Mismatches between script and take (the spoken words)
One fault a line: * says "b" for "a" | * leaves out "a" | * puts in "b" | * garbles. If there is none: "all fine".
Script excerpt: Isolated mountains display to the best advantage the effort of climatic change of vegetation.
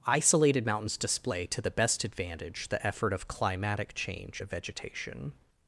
all fine